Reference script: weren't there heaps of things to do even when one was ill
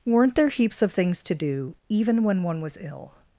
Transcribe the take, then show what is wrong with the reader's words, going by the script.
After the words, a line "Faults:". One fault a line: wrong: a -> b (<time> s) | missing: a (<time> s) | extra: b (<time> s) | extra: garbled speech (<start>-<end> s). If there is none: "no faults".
weren't there heaps of things to do even when one was ill
Faults:
no faults